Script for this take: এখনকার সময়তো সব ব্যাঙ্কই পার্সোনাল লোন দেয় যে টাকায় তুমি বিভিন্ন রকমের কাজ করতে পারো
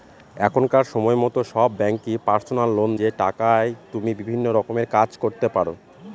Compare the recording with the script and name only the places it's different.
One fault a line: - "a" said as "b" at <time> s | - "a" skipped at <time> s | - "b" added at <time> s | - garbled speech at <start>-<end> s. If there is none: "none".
- "দেয়" skipped at 2.9 s